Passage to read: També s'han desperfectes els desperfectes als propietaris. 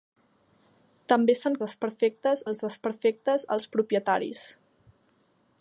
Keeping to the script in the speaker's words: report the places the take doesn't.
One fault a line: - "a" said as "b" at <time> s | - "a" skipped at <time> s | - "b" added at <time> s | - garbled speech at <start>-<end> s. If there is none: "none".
none